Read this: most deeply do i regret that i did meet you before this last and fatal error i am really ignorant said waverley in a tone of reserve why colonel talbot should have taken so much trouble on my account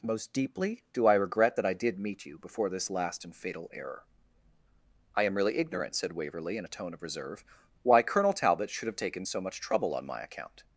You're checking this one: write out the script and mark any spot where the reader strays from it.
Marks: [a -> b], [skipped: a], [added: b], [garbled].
most deeply do i regret that i did meet you before this last and fatal error i am really ignorant said waverley in a tone of reserve why colonel talbot should have taken so much trouble on my account